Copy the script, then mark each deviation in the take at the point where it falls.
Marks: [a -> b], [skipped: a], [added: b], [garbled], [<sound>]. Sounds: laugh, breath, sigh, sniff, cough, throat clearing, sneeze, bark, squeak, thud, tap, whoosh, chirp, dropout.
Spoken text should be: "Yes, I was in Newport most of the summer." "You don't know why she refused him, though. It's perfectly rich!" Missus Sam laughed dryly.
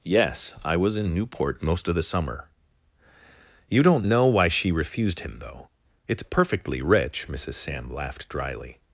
"Yes, I was in Newport most of the summer." "You don't know why she refused him, though. It's perfectly rich!" Missus Sam laughed dryly.